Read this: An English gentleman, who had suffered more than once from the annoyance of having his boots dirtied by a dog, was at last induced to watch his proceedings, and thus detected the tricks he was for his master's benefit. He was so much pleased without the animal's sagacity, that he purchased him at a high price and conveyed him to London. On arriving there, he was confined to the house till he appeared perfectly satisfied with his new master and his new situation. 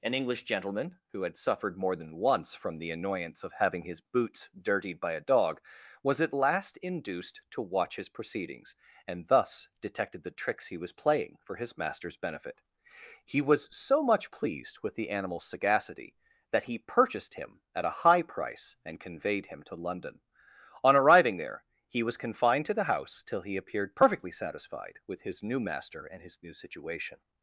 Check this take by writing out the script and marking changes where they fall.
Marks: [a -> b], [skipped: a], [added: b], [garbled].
An English gentleman, who had suffered more than once from the annoyance of having his boots dirtied by a dog, was at last induced to watch his proceedings, and thus detected the tricks he was [added: playing] for his master's benefit. He was so much pleased [without -> with] the animal's sagacity, that he purchased him at a high price and conveyed him to London. On arriving there, he was confined to the house till he appeared perfectly satisfied with his new master and his new situation.